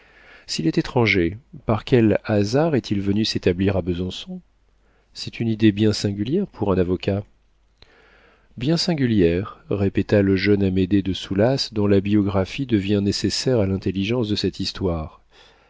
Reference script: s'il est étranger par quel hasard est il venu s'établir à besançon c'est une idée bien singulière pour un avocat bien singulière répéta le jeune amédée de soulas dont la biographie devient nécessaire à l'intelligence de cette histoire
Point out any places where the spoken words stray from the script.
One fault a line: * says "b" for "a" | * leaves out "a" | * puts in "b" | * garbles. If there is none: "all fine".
all fine